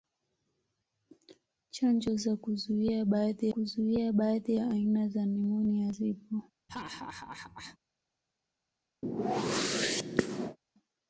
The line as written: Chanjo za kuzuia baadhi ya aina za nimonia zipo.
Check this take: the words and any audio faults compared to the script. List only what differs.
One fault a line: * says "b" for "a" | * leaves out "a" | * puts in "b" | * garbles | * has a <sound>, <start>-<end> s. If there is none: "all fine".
* puts in "kuzuia baadhi"
* has a laugh, 6.7-7.8 s
* has a whoosh, 9.0-10.6 s